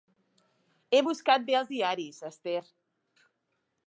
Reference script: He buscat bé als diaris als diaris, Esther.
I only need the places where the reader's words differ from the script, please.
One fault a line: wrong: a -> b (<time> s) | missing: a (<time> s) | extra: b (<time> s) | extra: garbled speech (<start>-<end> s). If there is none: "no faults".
missing: als diaris (2.2 s)